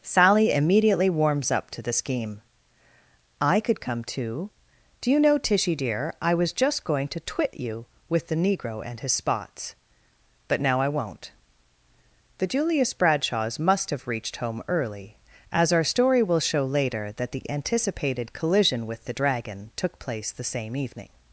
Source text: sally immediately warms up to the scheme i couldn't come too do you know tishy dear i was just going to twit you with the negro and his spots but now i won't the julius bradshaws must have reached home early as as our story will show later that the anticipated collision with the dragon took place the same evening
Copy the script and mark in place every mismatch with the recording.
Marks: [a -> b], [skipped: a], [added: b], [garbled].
sally immediately warms up to the scheme i [couldn't -> could] come too do you know tishy dear i was just going to twit you with the negro and his spots but now i won't the julius bradshaws must have reached home early as [skipped: as] our story will show later that the anticipated collision with the dragon took place the same evening